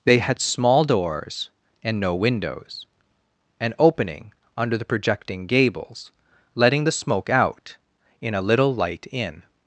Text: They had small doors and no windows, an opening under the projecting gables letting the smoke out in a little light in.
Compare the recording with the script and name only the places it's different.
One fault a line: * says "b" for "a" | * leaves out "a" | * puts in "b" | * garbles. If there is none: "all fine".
all fine